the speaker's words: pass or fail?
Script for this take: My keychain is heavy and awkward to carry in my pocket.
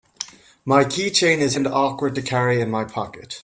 fail